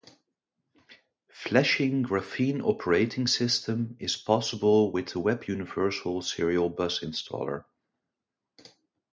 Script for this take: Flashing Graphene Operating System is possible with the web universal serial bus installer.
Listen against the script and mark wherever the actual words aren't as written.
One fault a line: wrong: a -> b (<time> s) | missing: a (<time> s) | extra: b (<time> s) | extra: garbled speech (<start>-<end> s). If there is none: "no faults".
no faults